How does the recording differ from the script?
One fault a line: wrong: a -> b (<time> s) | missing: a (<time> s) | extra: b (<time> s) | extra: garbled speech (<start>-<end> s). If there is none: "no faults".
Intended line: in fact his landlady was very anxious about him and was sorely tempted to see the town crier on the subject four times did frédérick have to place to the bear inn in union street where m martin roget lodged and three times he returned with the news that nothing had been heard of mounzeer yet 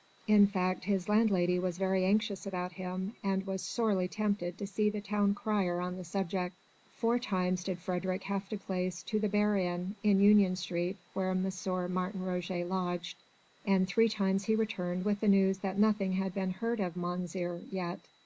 no faults